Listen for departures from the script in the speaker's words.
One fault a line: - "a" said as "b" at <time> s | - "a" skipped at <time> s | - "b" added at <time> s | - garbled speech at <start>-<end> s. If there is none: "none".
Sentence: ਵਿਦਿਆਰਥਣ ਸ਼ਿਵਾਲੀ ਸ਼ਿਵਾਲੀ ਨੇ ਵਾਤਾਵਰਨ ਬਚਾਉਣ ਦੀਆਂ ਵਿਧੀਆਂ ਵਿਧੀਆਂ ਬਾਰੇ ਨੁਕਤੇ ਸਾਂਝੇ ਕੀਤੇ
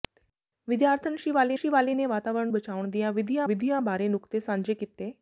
none